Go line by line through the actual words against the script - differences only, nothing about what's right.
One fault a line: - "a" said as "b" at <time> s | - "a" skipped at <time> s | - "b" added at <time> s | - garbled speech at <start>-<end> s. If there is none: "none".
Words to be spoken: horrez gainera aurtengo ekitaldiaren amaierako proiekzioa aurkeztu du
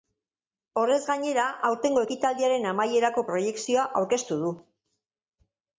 none